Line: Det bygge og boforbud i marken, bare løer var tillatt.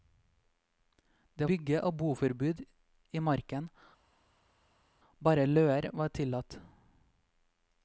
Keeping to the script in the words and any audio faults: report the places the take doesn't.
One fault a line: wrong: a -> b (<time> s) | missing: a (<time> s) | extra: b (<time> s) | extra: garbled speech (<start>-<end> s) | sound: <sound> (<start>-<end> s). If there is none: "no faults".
no faults